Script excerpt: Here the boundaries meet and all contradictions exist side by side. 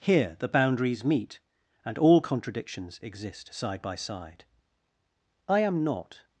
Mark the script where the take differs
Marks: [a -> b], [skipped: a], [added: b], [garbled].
Here the boundaries meet and all contradictions exist side by side. [added: I am not]